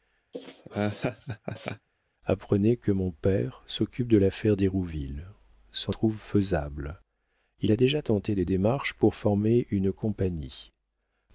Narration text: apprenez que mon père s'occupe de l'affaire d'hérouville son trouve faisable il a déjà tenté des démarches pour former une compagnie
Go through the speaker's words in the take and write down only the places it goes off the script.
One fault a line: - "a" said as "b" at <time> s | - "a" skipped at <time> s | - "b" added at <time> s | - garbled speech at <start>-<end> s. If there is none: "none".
none